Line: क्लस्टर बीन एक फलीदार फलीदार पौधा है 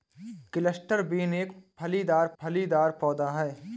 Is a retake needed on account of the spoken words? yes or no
no